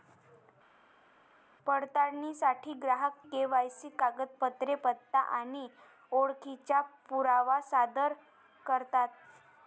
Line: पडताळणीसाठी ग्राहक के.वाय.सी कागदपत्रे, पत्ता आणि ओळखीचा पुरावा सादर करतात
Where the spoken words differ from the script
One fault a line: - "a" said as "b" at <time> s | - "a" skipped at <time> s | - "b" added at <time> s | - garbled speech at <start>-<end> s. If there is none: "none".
none